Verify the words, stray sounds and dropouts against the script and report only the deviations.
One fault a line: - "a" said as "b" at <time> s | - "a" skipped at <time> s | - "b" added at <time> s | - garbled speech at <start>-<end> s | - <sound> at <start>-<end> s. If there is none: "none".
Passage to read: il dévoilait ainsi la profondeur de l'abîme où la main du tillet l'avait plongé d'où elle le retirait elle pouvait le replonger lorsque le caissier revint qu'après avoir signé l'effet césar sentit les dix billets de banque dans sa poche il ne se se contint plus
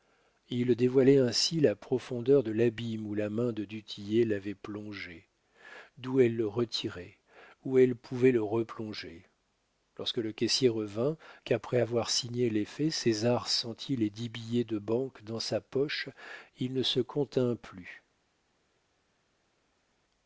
- "de" added at 3.5 s
- "où" added at 7.7 s
- "se" skipped at 17.0 s